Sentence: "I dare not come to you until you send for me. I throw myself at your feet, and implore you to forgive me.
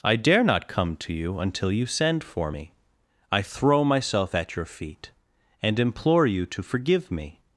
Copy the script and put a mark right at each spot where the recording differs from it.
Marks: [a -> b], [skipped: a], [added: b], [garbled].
"I dare not come to you until you send for me. I throw myself at your feet, and implore you to forgive me.